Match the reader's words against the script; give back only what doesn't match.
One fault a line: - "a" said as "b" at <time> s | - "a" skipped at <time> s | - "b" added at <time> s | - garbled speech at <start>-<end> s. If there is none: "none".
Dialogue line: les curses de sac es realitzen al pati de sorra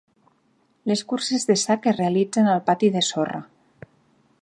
none